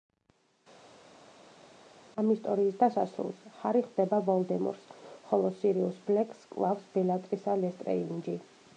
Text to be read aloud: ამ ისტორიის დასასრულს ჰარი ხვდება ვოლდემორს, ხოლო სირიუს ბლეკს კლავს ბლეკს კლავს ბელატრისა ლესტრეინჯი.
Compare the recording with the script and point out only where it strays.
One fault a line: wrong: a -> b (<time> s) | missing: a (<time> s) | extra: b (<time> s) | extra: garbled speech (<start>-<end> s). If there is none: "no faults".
missing: ბლეკს კლავს (6.9 s)